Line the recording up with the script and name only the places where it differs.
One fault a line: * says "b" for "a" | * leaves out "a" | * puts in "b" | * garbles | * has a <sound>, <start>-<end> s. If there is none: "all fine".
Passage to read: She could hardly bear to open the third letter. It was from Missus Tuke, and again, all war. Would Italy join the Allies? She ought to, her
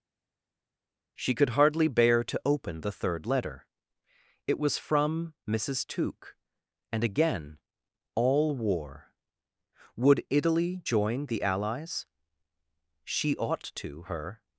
all fine